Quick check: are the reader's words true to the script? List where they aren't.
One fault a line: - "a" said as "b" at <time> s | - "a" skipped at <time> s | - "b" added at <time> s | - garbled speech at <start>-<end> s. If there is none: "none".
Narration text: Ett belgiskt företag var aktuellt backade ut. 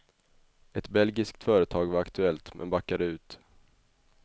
- "men" added at 2.5 s